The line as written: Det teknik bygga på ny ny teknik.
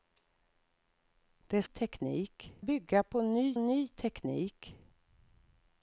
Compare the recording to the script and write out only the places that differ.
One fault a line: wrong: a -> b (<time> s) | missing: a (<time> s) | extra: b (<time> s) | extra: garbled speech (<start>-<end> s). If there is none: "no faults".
no faults